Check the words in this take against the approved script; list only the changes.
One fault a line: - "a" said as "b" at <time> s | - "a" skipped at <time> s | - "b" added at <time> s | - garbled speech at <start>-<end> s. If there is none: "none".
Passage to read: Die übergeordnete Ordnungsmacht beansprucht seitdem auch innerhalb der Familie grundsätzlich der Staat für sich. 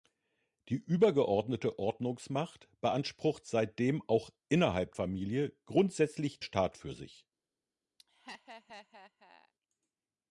- "der" skipped at 5.0 s
- "der" skipped at 6.4 s